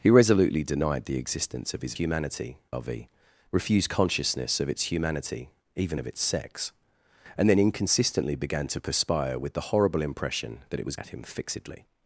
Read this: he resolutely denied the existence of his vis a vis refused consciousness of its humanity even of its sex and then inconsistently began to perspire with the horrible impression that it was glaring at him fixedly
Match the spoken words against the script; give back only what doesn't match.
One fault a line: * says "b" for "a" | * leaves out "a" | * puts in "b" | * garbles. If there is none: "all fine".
* says "humanity" for "vis"
* leaves out "glaring"